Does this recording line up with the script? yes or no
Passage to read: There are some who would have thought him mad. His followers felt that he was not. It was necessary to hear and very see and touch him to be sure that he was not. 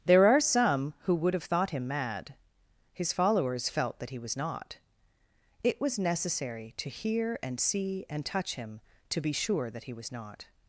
no